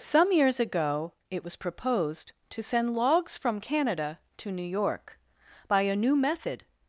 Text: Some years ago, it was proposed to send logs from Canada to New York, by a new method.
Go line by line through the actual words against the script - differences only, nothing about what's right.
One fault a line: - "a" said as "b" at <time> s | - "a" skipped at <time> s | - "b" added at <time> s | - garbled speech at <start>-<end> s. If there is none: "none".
none